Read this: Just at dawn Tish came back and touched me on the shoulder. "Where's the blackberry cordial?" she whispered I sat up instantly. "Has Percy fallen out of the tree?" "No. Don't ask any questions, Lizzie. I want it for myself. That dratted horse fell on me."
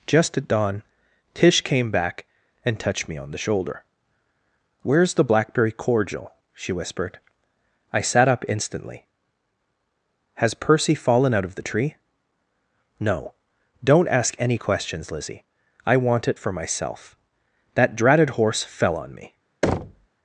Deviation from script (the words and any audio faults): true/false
true